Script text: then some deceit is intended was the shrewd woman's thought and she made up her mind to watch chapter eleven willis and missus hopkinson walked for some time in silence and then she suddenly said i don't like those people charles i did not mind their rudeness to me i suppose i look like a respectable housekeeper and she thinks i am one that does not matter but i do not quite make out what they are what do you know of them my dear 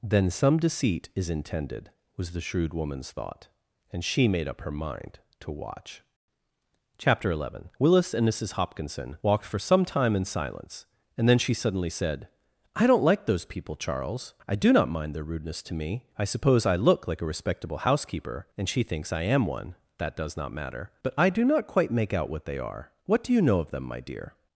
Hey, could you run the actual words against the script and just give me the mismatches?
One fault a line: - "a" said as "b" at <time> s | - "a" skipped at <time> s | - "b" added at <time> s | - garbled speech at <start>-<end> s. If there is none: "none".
- "did" said as "do" at 14.6 s